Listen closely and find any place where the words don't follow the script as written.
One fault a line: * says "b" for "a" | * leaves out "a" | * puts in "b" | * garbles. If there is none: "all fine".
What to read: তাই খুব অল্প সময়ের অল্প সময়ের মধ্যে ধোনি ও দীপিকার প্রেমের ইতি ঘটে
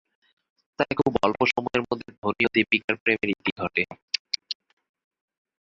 * leaves out "অল্প সময়ের"